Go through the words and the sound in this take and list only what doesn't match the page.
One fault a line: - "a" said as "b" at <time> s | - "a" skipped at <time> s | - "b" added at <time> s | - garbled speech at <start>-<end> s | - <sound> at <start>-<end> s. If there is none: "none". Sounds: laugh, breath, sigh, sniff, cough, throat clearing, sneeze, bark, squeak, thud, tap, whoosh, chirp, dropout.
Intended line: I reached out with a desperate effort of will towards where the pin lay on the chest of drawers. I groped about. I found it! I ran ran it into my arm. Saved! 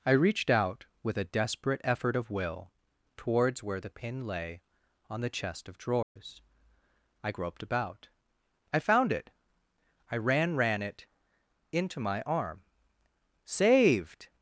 - dropout at 6.0-6.2 s